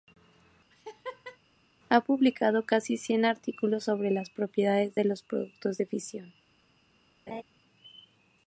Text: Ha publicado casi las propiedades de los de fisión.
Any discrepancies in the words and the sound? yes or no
yes